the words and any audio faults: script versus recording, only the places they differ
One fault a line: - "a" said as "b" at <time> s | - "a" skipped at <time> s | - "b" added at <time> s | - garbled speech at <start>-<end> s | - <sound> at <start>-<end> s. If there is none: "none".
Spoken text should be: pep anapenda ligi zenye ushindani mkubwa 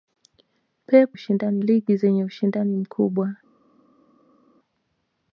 - "anapenda" said as "ushindani" at 1.1 s